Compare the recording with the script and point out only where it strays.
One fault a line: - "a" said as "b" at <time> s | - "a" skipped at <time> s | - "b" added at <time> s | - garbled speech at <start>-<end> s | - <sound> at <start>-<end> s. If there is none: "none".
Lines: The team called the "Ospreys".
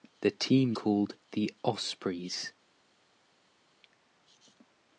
none